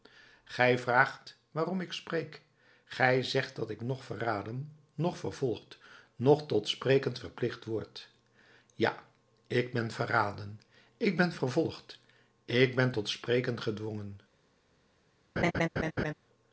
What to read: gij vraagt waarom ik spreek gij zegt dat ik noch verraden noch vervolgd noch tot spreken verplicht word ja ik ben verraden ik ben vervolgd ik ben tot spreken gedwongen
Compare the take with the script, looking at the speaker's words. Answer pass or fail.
pass